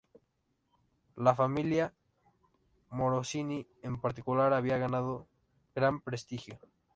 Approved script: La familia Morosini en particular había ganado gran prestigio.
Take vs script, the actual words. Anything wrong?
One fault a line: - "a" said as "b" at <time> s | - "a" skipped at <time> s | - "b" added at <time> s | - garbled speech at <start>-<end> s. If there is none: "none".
none